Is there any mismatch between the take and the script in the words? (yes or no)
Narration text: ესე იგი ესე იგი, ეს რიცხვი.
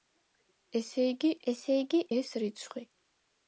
no